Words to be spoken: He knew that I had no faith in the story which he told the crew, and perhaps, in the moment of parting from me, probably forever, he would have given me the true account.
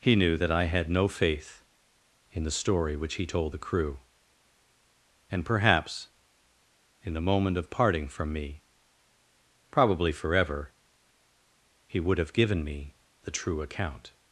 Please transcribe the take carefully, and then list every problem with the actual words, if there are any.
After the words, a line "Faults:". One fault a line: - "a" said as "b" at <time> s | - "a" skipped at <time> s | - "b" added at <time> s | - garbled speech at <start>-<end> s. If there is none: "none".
He knew that I had no faith in the story which he told the crew, and perhaps, in the moment of parting from me, probably forever, he would have given me the true account.
Faults:
none